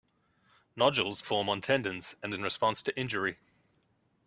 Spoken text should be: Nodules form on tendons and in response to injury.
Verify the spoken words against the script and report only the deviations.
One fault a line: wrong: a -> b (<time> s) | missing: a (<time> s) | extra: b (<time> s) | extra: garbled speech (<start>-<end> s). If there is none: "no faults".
no faults